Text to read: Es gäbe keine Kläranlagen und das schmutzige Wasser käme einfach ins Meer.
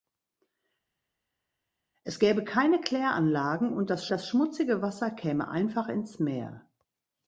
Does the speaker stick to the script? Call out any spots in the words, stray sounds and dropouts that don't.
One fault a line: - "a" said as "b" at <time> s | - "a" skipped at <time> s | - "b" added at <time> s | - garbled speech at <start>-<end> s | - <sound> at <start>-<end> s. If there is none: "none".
- "das" added at 4.1 s